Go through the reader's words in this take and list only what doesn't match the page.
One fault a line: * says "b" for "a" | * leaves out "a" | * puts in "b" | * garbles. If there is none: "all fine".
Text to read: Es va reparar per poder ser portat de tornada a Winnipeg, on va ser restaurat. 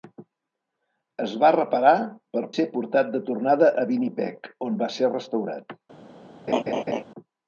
* leaves out "poder"